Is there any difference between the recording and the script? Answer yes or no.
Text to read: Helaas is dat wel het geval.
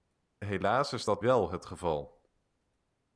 no